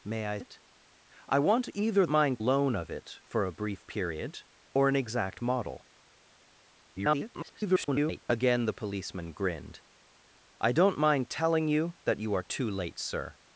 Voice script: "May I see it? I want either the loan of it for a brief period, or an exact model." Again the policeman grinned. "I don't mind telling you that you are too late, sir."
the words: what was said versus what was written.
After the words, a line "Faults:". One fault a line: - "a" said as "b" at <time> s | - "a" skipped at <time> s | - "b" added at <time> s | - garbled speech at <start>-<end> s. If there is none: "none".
"May I it? I want either mind loan of it for a brief period, or an exact model." [garbled] Again the policeman grinned. "I don't mind telling you that you are too late, sir."
Faults:
- "see" skipped at 0.4 s
- "the" said as "mind" at 2.1 s
- garbled speech at 7.0-8.2 s